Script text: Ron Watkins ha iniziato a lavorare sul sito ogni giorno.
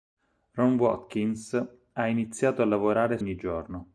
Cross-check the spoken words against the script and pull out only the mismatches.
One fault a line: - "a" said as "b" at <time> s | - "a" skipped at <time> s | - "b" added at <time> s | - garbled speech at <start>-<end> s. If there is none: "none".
- "sul sito" skipped at 3.2 s